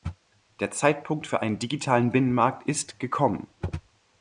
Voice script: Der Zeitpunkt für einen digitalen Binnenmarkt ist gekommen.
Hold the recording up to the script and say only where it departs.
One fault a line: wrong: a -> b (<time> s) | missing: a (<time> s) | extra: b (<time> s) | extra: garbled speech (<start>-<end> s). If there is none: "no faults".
no faults